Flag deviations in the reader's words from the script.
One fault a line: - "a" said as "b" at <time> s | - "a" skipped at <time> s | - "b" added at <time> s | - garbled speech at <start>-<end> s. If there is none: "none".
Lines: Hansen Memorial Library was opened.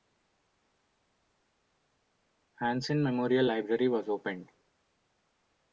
none